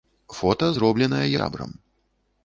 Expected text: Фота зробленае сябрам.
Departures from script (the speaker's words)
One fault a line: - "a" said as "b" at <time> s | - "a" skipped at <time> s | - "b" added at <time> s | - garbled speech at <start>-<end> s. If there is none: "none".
none